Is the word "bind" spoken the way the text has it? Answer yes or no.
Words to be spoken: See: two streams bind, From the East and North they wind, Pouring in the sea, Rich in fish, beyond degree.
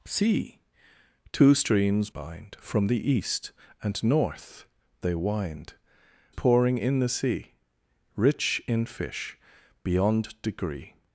yes